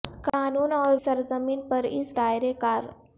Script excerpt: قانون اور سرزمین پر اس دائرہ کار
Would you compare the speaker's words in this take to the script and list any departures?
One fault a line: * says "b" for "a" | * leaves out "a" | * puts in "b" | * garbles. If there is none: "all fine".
all fine